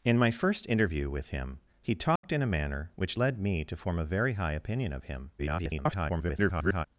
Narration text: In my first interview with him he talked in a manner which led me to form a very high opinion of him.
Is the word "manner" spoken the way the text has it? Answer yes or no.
yes